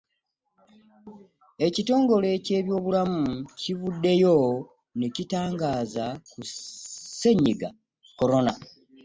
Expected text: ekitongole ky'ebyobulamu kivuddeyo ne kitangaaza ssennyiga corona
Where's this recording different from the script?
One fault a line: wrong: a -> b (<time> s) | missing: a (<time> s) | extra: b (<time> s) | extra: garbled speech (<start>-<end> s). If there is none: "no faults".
extra: ku (6.3 s)